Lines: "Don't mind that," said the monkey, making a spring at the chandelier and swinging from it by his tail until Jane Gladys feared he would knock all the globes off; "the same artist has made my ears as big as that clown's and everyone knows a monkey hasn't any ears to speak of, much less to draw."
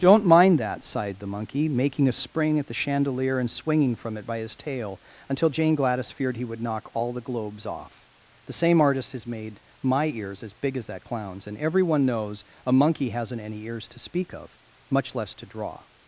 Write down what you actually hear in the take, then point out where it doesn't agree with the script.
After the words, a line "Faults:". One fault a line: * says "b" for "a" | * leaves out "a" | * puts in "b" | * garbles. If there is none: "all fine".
"Don't mind that," sighed the monkey, making a spring at the chandelier and swinging from it by his tail until Jane Gladys feared he would knock all the globes off; "the same artist has made my ears as big as that clown's and everyone knows a monkey hasn't any ears to speak of, much less to draw."
Faults:
* says "sighed" for "said"